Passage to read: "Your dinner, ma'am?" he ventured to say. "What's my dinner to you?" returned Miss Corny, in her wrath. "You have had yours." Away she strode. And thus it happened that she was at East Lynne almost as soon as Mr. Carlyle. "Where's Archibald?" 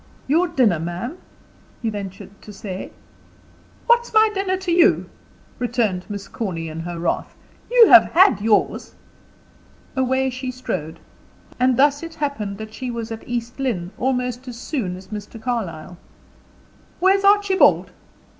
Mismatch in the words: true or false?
false